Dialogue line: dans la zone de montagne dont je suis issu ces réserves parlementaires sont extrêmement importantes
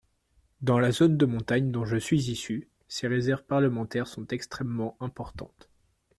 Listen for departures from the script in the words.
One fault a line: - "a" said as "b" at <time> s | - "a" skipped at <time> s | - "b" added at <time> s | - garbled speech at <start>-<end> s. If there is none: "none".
none